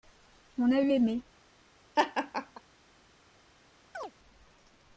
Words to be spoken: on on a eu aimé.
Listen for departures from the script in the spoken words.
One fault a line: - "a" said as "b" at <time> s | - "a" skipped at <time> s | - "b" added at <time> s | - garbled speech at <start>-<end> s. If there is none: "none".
- "on" skipped at 0.7 s